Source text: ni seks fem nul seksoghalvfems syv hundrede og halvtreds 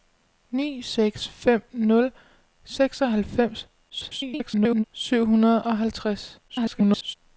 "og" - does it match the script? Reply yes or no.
yes